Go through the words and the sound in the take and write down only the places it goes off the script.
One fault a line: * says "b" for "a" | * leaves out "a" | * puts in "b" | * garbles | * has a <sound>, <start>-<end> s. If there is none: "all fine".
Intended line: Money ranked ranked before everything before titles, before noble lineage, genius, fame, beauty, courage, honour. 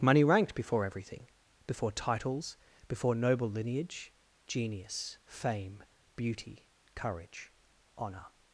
* leaves out "ranked"